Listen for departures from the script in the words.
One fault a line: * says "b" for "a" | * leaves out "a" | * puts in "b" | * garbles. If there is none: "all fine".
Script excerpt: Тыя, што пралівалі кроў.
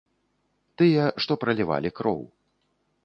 all fine